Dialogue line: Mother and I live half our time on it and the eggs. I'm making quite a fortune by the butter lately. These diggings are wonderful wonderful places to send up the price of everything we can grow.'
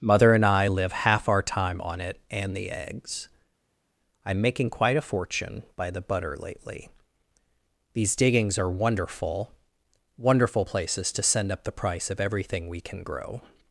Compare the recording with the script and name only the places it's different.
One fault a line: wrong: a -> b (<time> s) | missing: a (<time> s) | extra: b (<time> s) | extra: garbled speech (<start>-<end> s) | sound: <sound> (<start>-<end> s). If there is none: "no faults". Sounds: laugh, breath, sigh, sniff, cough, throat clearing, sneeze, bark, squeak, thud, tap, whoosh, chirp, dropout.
no faults